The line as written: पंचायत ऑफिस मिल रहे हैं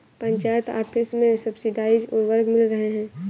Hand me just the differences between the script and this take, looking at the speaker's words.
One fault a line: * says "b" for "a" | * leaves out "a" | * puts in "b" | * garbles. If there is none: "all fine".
* puts in "में सब्सिडाइज्ड उर्वरक"